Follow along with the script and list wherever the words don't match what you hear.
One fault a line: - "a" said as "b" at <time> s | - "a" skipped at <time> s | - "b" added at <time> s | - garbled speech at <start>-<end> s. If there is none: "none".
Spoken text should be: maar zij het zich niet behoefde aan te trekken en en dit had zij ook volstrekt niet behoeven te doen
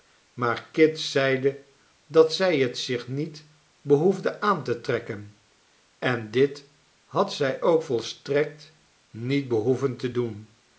- "kit zeide dat" added at 0.7 s
- "en" skipped at 6.3 s